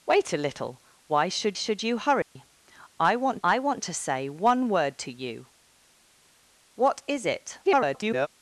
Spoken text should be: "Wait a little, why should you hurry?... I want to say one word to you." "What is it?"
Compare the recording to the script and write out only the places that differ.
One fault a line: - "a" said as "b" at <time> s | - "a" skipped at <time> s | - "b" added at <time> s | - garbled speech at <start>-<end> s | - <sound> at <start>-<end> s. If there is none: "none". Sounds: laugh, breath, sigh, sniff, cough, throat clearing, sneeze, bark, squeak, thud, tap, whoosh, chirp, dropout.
- "should" added at 1.5 s
- dropout at 2.2-2.4 s
- "I want" added at 3.4 s
- garbled speech at 7.6-8.3 s